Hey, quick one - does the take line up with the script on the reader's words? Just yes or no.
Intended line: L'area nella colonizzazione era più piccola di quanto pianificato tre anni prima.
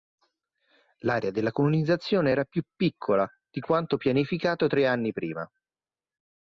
no